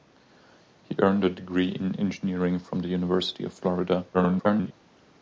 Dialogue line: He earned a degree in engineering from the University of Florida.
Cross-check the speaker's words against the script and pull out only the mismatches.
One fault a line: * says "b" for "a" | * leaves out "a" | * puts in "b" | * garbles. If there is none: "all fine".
* garbles